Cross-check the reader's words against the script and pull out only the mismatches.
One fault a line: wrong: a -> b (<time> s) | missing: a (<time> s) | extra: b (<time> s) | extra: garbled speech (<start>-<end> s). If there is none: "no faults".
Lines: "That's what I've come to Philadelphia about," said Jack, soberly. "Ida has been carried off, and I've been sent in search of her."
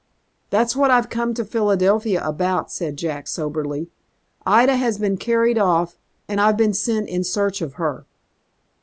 no faults